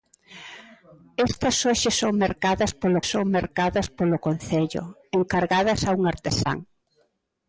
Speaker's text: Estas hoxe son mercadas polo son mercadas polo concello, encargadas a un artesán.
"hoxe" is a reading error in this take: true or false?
false